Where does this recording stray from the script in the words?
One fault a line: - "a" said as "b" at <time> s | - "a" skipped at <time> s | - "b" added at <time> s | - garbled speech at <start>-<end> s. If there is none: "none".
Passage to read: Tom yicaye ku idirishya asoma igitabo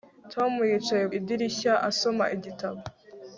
- "ku" skipped at 1.1 s